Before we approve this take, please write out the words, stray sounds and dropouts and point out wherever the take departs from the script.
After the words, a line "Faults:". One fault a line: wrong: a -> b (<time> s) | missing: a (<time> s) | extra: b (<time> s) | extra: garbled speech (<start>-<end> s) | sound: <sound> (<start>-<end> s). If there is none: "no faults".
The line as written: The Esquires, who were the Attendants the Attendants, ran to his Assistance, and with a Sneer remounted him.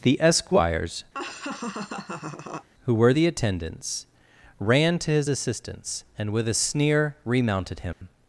The Esquires, who were the Attendants, ran to his Assistance, and with a Sneer remounted him.
Faults:
sound: laugh (1.1-2.7 s)
missing: the Attendants (4.1 s)
sound: dropout (7.9-8.0 s)